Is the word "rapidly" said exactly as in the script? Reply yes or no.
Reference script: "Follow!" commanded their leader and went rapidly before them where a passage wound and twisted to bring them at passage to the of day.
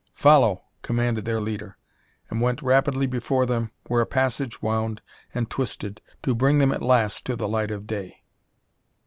yes